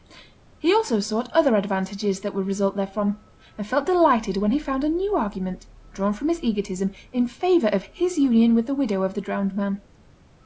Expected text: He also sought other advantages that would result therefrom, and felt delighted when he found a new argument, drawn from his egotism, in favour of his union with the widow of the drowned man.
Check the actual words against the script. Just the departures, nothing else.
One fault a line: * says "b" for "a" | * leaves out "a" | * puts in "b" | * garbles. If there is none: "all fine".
all fine